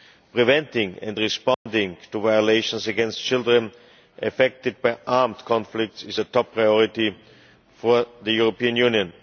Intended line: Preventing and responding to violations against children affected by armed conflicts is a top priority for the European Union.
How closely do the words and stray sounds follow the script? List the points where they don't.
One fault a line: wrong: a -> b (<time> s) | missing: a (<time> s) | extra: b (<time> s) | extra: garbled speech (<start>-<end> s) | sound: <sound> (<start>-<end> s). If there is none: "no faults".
sound: dropout (1.5-1.7 s)